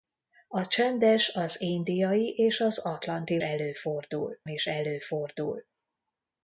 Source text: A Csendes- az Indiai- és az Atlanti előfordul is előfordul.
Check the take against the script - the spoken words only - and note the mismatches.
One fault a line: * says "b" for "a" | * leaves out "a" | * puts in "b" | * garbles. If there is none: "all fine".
all fine